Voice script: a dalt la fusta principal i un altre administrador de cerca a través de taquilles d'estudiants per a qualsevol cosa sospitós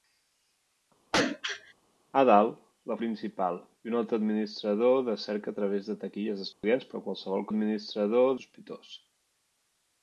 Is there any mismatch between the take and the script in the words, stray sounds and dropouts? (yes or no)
yes